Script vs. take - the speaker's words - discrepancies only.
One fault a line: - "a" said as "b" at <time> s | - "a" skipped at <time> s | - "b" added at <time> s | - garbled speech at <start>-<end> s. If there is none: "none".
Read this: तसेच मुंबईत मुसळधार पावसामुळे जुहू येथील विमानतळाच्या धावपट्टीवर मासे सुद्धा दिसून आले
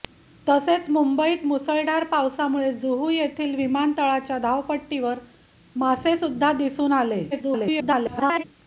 - garbled speech at 7.3-8.4 s